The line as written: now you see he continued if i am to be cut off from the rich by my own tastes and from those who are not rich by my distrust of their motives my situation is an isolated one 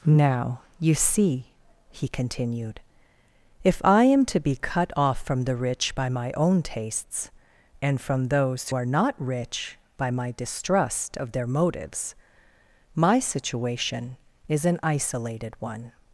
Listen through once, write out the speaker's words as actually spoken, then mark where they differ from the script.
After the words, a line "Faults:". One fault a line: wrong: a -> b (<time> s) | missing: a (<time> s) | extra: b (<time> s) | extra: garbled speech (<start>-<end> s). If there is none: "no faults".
now you see he continued if i am to be cut off from the rich by my own tastes and from those are not rich by my distrust of their motives my situation is an isolated one
Faults:
missing: who (8.7 s)